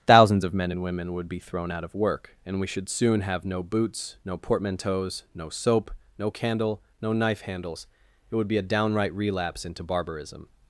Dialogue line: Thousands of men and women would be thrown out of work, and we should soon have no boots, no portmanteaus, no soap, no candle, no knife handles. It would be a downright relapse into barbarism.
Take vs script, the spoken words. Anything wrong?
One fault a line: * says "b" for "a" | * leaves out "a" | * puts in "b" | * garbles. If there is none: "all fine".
all fine